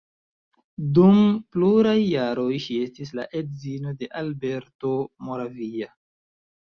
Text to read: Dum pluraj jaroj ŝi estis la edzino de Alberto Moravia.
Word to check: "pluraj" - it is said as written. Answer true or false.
true